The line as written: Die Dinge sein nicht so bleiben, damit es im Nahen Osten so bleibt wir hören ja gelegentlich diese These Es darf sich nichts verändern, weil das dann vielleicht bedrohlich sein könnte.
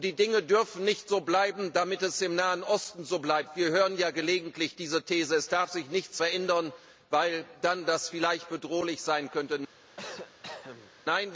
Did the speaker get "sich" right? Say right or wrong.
right